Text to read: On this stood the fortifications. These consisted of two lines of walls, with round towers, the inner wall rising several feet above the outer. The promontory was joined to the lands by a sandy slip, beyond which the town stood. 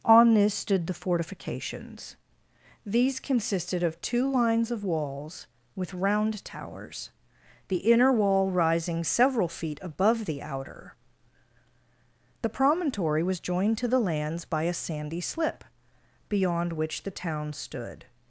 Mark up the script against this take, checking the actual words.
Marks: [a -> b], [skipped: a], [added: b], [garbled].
On this stood the fortifications. These consisted of two lines of walls, with round towers, the inner wall rising several feet above the outer. The promontory was joined to the lands by a sandy slip, beyond which the town stood.